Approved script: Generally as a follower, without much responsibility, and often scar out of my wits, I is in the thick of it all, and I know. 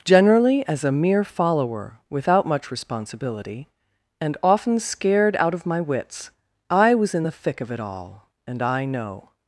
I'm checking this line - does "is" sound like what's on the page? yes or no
no